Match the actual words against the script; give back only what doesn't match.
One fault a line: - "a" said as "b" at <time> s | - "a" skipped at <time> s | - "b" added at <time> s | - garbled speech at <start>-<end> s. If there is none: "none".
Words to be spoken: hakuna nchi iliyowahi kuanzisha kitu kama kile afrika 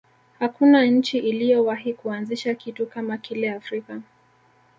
none